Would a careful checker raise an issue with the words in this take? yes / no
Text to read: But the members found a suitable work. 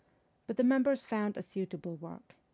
no